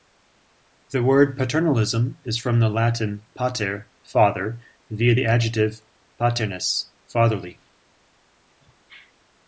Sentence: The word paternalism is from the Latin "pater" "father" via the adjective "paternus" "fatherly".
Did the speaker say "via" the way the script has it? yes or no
yes